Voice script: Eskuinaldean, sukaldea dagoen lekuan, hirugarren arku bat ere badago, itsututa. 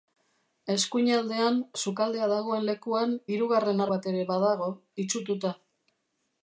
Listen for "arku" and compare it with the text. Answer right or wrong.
wrong